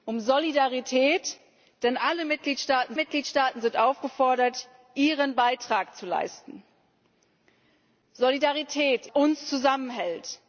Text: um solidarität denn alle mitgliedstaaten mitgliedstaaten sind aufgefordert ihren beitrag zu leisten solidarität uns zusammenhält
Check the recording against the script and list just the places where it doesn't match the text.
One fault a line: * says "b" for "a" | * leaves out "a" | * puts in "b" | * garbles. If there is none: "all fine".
all fine